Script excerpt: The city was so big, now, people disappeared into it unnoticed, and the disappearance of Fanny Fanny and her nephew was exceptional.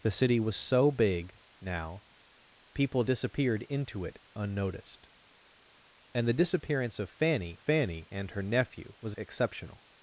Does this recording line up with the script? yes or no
yes